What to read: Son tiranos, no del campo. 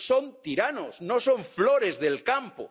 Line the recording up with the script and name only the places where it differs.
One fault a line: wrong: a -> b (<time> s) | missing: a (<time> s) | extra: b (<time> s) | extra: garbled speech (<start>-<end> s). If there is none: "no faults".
extra: son flores (1.2 s)